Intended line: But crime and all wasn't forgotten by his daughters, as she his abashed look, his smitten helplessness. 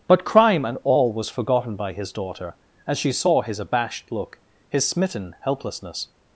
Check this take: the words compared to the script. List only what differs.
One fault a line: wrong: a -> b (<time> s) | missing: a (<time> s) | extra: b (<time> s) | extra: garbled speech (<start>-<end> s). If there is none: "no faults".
wrong: wasn't -> was (1.1 s)
wrong: daughters -> daughter (2.1 s)
extra: saw (3.1 s)